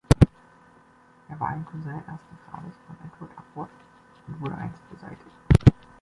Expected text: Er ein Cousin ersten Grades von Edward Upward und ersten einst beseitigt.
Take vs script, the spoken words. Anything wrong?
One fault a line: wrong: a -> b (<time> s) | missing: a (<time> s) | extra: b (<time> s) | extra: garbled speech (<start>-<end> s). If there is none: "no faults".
extra: war (1.4 s)
wrong: ersten -> wurde (4.4 s)